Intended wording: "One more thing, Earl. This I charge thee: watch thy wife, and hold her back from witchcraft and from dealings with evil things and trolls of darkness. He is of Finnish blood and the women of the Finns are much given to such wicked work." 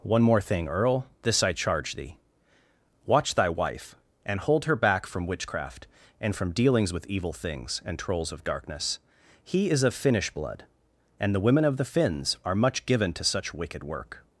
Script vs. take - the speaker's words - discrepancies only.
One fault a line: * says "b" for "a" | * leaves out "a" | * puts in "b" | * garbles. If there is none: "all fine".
all fine